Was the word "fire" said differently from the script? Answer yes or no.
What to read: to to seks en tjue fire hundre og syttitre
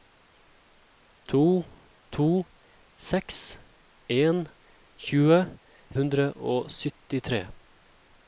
yes